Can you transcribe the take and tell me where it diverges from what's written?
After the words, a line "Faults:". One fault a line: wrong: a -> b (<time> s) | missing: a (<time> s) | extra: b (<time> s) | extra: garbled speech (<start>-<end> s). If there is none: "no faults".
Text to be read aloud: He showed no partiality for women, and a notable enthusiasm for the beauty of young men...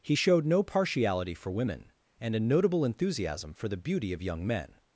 He showed no partiality for women, and a notable enthusiasm for the beauty of young men...
Faults:
no faults